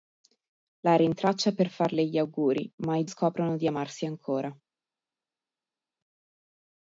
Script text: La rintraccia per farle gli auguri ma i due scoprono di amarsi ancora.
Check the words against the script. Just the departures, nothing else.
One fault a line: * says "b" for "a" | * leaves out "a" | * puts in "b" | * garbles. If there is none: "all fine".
* leaves out "due"